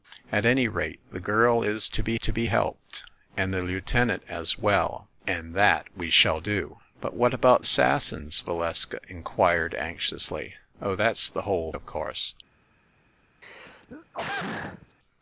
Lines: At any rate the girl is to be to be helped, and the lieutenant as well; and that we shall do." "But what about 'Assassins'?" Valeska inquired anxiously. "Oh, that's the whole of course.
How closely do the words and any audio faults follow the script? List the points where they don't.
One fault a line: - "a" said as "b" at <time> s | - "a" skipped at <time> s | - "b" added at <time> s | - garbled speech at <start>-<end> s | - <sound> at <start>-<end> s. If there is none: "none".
- throat clearing at 13.4-15.0 s